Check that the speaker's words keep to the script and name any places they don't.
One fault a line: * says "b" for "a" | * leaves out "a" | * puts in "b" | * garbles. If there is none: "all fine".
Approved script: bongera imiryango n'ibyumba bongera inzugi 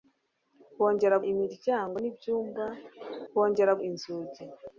all fine